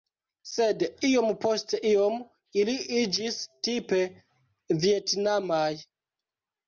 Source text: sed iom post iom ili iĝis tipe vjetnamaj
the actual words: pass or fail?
pass